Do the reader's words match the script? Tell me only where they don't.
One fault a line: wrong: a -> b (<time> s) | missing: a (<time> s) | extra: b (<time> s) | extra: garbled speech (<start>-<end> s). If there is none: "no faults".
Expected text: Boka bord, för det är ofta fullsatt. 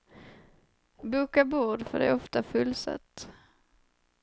no faults